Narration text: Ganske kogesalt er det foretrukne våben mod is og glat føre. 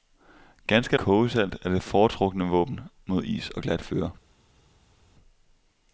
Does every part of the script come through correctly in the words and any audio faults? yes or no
yes